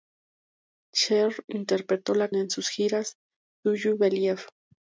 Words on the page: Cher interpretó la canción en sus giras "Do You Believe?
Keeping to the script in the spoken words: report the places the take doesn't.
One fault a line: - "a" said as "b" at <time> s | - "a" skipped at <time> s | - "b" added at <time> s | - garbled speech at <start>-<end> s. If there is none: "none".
- "canción" skipped at 2.3 s